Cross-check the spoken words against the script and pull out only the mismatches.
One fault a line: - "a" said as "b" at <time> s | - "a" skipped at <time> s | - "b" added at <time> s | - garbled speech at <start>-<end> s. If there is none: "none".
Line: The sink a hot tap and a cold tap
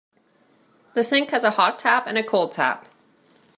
- "has" added at 1.3 s